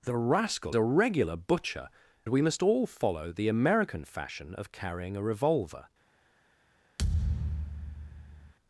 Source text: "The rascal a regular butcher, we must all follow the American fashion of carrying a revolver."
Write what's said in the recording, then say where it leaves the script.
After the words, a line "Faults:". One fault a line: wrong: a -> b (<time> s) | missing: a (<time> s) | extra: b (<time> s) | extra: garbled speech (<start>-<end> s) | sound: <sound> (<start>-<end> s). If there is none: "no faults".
"The rascal a regular butcher, we must all follow the American fashion of carrying a revolver."
Faults:
sound: thud (7.0-8.5 s)